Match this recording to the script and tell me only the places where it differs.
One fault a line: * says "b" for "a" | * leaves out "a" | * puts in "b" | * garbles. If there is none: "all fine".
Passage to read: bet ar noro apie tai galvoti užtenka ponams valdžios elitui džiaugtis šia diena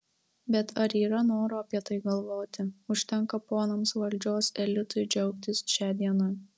* puts in "yra"